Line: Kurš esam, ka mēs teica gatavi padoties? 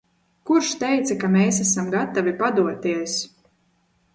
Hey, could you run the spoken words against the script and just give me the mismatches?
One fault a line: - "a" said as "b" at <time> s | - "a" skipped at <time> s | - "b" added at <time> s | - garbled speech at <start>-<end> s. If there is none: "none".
- "esam" said as "teica" at 0.8 s
- "teica" said as "esam" at 1.6 s